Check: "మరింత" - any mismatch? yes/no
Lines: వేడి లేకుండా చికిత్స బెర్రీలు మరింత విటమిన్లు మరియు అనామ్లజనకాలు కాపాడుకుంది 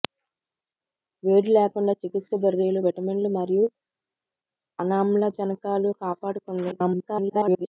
yes